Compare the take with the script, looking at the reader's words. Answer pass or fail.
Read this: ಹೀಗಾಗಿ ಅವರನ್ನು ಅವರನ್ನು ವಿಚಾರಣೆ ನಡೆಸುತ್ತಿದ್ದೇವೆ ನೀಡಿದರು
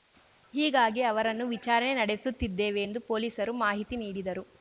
fail